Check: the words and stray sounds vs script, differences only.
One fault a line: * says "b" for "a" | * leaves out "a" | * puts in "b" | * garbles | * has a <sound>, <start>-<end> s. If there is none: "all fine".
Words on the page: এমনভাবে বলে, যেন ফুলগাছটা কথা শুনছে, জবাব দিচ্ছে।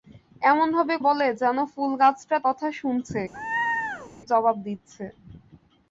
* has a laugh, 3.3-4.1 s